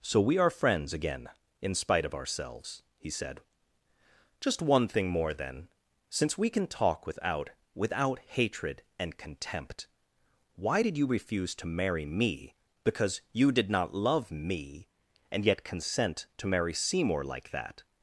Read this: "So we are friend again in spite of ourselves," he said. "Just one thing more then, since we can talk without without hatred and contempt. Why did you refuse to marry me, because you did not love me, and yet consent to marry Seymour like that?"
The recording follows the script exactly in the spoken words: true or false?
false